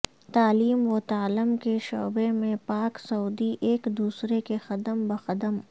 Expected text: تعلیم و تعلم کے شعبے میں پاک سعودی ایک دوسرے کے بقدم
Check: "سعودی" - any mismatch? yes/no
no